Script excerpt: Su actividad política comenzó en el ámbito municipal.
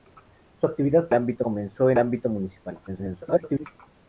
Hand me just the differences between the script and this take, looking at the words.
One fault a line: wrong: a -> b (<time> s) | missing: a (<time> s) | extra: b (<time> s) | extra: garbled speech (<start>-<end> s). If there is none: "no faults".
wrong: política -> ámbito (1.1 s)
missing: el (2.0 s)
extra: garbled speech (2.9-3.7 s)